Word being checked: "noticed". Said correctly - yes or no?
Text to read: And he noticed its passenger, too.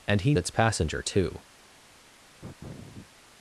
no